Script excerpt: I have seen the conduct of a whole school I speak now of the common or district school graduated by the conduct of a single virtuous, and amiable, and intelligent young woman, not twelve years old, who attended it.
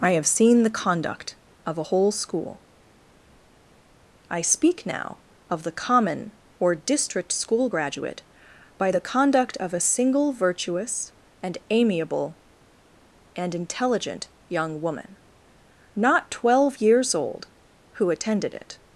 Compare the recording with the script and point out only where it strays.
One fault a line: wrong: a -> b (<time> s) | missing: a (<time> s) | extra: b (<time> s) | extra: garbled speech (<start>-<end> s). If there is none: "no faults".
wrong: graduated -> graduate (7.7 s)